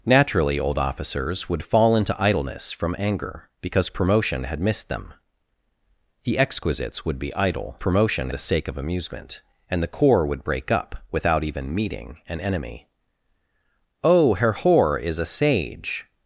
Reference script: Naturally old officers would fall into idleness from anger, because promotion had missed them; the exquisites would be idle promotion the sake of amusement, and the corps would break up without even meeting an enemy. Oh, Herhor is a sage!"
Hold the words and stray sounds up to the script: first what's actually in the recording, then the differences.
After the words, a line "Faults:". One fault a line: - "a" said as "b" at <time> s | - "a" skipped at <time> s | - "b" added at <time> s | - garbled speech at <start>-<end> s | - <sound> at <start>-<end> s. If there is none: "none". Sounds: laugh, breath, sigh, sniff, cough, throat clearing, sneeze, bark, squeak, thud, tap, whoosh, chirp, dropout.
Naturally old officers would fall into idleness from anger, because promotion had missed them; the exquisites would be idle promotion the sake of amusement, and the corps would break up without even meeting an enemy. Oh, Herhor is a sage!"
Faults:
none